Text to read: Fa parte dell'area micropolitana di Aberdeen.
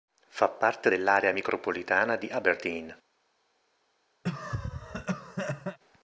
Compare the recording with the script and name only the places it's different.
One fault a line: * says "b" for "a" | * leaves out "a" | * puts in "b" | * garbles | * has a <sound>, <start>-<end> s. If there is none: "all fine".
* has a cough, 4.2-5.8 s